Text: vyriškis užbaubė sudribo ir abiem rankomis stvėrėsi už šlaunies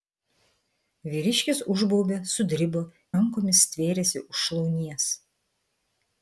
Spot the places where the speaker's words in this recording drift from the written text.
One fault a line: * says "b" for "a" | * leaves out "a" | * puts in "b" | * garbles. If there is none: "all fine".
* leaves out "ir abiem"